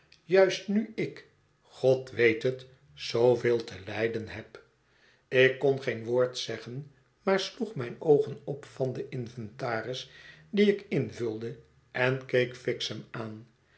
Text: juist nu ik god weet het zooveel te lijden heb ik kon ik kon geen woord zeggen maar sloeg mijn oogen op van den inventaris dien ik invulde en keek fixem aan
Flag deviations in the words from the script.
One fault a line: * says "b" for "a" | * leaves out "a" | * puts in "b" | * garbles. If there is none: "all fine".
* leaves out "ik kon"